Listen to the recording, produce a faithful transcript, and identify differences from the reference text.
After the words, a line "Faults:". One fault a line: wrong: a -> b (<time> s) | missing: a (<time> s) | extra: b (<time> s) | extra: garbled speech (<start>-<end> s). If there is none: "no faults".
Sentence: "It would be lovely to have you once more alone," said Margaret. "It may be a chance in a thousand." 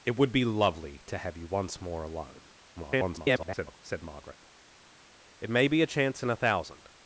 "It would be lovely to have you once more alone," [garbled] said Margaret. "It may be a chance in a thousand."
Faults:
extra: garbled speech (2.8-3.8 s)